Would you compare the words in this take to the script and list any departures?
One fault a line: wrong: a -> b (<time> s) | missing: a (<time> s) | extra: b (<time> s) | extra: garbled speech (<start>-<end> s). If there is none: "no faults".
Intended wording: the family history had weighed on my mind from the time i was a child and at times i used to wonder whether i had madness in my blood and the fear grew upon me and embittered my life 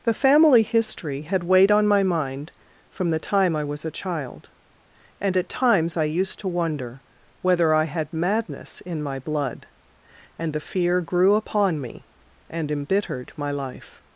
no faults